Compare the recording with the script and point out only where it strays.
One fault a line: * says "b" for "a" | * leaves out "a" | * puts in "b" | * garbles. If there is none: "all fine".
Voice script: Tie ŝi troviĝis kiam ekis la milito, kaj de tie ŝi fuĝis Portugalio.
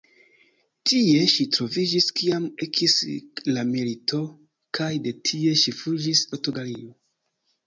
all fine